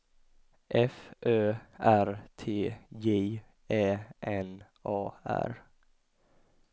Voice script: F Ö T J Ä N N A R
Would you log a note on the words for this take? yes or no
yes